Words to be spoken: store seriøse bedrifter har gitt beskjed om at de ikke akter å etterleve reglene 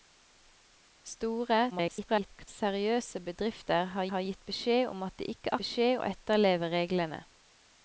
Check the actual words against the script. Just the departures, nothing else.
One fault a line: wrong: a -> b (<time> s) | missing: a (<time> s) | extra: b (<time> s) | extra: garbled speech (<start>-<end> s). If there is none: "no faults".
extra: garbled speech (1.7-2.5 s)
extra: har (4.1 s)
wrong: akter -> beskjed (5.6 s)